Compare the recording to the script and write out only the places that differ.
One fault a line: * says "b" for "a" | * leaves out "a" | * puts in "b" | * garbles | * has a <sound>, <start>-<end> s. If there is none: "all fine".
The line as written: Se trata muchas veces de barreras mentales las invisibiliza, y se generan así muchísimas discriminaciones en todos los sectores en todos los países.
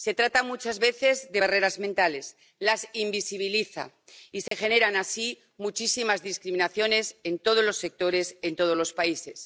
* has a dropout, 4.5-4.5 s